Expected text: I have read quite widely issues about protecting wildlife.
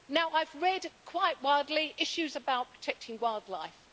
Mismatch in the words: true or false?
false